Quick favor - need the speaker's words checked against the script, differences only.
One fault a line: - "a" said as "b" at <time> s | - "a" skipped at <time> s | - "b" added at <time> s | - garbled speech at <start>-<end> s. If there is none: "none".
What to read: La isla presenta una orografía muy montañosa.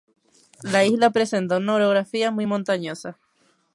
none